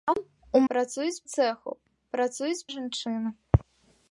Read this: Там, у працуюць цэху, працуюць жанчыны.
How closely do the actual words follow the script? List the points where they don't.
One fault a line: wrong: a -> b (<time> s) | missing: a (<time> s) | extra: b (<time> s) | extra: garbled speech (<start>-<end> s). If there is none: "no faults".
no faults